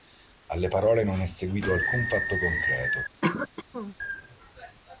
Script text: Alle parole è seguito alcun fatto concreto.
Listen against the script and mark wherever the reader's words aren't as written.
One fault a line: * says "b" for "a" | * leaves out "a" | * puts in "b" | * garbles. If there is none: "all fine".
* puts in "non"